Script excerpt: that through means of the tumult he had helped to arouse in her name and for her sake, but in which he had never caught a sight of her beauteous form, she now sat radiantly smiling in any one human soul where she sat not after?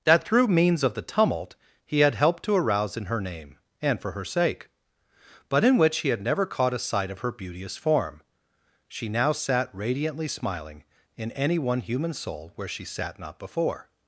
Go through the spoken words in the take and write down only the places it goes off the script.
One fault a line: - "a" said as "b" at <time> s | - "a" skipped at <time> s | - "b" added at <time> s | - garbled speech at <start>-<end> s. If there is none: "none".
- "after" said as "before" at 13.4 s